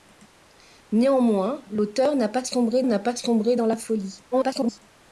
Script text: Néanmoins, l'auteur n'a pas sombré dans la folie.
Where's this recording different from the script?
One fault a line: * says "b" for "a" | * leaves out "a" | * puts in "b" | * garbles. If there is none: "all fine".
* puts in "n'a pas sombré"
* garbles